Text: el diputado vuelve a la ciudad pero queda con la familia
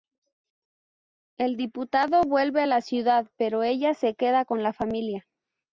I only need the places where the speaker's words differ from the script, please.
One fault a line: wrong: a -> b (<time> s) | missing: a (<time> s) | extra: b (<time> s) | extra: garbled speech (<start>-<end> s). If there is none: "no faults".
extra: ella se (3.6 s)